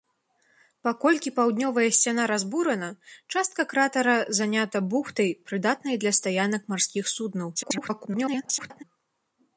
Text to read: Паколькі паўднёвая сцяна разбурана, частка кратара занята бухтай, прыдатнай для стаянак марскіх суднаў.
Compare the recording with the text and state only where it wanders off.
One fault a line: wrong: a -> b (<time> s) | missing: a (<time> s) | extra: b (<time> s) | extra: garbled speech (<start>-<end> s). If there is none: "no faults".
extra: garbled speech (7.6-8.8 s)